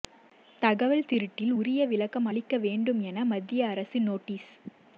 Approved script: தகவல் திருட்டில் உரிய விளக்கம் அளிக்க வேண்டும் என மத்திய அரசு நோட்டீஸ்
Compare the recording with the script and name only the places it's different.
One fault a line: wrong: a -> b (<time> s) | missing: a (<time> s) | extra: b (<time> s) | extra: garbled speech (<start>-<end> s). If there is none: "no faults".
no faults